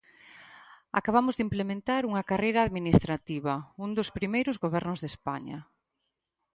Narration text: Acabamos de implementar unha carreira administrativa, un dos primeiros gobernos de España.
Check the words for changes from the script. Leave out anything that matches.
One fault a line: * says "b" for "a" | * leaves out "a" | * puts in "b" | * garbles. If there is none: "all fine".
all fine